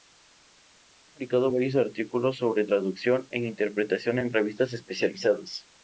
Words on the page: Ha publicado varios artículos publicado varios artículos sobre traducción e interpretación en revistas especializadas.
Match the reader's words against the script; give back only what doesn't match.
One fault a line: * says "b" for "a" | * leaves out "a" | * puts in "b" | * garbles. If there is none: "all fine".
* leaves out "publicado varios artículos"